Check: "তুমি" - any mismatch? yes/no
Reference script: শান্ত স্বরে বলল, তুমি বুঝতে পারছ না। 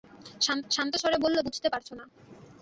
yes